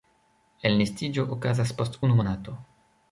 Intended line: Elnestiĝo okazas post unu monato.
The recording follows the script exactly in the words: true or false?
true